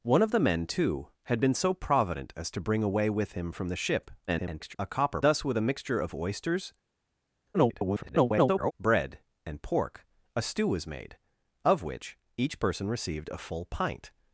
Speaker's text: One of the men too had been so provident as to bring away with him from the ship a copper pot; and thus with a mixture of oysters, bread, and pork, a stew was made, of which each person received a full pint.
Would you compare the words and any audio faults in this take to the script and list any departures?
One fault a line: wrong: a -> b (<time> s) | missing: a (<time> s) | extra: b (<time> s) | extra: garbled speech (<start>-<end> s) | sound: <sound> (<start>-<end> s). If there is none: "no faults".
extra: garbled speech (4.3-4.8 s)
missing: pot and (5.2 s)
extra: garbled speech (7.5-8.7 s)